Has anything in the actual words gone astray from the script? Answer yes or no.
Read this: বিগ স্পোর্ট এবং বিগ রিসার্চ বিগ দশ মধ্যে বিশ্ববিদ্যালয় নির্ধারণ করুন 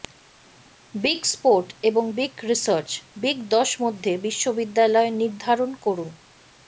no